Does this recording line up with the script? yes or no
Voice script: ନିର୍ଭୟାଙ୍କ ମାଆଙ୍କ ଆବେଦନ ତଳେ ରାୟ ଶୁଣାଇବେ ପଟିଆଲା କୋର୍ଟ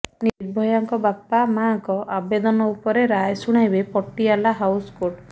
no